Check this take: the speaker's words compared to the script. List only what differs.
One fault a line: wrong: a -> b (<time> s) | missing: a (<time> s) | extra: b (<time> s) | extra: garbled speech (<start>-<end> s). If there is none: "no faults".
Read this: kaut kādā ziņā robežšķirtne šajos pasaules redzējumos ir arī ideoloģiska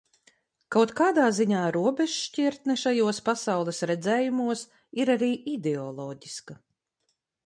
no faults